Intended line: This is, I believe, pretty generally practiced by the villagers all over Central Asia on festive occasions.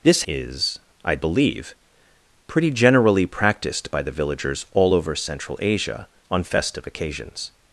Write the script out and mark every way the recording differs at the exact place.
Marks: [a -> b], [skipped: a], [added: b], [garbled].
This is, I believe, pretty generally practiced by the villagers all over Central Asia on festive occasions.